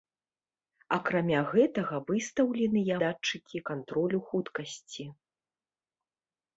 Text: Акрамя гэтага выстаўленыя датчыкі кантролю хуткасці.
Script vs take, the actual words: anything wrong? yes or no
no